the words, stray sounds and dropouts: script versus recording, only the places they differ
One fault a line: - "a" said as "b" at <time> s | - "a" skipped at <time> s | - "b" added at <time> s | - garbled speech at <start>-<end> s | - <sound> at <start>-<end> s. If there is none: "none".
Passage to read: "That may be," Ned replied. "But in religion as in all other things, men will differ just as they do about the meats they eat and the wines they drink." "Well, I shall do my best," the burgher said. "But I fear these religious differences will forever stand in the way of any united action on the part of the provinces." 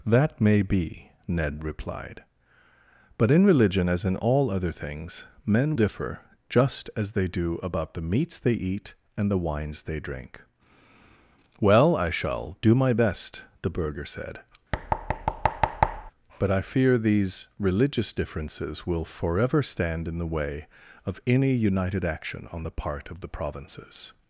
- "will" skipped at 5.8 s
- thud at 14.7-16.1 s